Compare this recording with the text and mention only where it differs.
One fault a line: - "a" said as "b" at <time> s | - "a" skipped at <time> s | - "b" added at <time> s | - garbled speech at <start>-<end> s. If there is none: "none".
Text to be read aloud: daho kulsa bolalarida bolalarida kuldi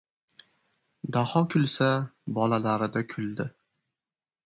- "bolalarida" skipped at 3.1 s